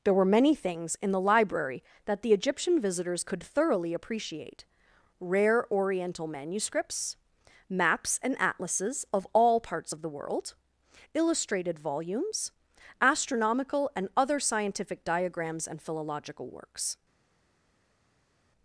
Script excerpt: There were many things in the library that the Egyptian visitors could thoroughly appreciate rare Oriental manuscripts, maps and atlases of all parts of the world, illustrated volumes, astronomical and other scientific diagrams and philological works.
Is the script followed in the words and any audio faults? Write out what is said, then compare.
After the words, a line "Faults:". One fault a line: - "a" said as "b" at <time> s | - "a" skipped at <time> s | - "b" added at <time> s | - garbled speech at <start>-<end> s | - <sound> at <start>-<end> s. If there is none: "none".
There were many things in the library that the Egyptian visitors could thoroughly appreciate rare Oriental manuscripts, maps and atlases of all parts of the world, illustrated volumes, astronomical and other scientific diagrams and philological works.
Faults:
none